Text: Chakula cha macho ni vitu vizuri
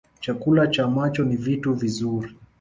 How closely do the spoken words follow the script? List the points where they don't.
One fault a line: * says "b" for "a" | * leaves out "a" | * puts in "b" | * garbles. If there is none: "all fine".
all fine